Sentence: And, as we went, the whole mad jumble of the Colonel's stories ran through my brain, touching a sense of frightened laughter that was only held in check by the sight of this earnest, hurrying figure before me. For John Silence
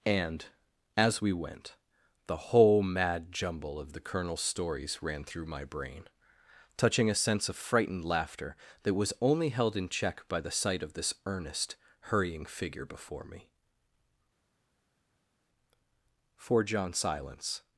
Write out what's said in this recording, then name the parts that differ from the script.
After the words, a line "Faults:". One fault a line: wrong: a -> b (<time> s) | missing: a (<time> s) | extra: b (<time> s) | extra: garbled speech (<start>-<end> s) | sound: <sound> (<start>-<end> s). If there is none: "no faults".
And, as we went, the whole mad jumble of the Colonel's stories ran through my brain, touching a sense of frightened laughter that was only held in check by the sight of this earnest, hurrying figure before me. For John Silence
Faults:
no faults